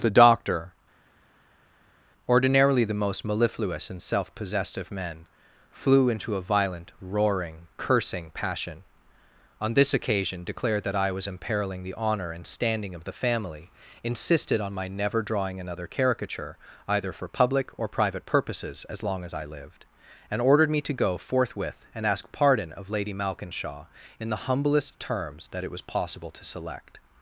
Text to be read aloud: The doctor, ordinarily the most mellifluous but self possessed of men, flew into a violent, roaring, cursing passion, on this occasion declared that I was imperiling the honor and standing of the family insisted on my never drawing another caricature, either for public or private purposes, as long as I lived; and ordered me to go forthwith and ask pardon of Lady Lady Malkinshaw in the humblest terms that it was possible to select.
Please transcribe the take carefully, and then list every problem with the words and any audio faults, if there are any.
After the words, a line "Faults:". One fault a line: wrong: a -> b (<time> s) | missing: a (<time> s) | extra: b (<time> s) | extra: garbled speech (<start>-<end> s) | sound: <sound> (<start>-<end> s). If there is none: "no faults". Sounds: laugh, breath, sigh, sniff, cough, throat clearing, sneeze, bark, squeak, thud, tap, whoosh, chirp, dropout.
The doctor, ordinarily the most mellifluous and self possessed of men, flew into a violent, roaring, cursing passion, on this occasion declared that I was imperiling the honor and standing of the family insisted on my never drawing another caricature, either for public or private purposes, as long as I lived; and ordered me to go forthwith and ask pardon of Lady Malkinshaw in the humblest terms that it was possible to select.
Faults:
wrong: but -> and (3.9 s)
missing: Lady (23.1 s)